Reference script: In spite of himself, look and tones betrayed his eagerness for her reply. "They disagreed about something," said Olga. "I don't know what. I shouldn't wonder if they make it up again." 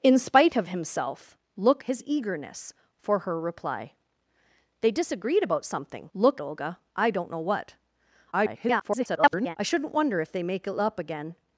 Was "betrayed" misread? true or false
true